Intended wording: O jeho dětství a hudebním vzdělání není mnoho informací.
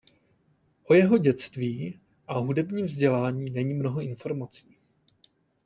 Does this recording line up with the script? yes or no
yes